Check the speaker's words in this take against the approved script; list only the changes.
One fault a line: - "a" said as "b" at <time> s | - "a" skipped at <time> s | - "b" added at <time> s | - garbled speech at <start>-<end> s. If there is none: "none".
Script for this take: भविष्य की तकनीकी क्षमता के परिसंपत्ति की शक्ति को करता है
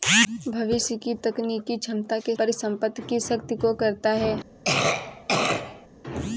none